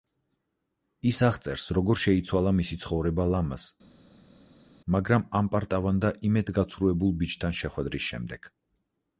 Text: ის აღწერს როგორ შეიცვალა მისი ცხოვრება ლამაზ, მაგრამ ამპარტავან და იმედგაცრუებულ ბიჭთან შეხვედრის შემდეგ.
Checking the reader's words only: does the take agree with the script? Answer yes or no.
yes